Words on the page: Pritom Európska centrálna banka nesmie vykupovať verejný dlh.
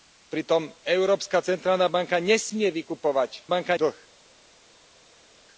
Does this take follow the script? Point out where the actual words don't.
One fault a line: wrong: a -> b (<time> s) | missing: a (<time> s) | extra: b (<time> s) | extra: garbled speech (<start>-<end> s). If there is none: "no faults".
wrong: verejný -> banka (3.5 s)